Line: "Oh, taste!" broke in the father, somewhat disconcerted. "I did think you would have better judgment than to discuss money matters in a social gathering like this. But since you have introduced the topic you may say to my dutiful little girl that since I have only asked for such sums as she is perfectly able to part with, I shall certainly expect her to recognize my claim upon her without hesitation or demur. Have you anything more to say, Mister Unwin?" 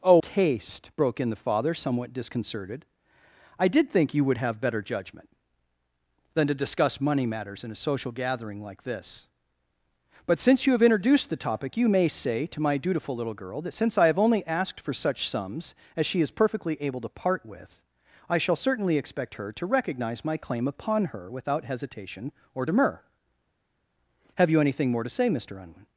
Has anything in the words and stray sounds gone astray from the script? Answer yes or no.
no